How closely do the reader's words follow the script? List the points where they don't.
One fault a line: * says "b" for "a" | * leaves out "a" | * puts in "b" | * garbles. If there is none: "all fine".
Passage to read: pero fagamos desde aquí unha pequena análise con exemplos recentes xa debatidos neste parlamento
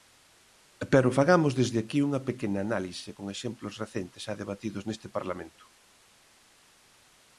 all fine